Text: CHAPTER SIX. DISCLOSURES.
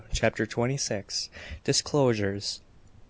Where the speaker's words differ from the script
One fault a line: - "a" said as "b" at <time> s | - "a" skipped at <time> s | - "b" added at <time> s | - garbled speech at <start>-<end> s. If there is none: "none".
- "TWENTY" added at 0.5 s